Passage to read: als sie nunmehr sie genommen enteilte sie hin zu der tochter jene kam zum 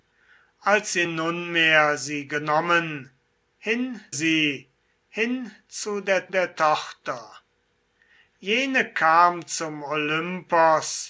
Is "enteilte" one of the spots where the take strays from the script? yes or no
yes